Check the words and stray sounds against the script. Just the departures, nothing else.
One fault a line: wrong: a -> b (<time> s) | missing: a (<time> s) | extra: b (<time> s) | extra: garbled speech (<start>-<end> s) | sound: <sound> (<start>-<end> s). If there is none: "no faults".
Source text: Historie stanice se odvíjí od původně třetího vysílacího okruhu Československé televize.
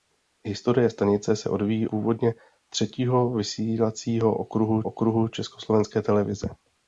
missing: od (1.9 s)
extra: okruhu (4.8 s)